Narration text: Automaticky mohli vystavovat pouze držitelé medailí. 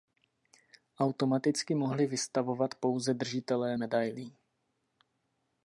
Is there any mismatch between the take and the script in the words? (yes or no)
no